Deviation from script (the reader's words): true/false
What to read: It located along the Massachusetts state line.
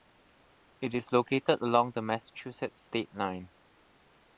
true